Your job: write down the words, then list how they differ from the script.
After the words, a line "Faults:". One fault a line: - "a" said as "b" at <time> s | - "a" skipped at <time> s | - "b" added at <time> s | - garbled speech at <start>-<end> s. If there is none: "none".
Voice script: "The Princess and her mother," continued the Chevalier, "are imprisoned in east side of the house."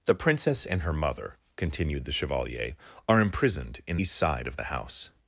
"The Princess and her mother," continued the Chevalier, "are imprisoned in east side of the house."
Faults:
none